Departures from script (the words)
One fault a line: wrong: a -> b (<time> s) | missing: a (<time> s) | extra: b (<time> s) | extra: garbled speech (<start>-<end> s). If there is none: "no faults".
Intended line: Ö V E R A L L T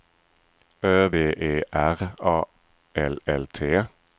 no faults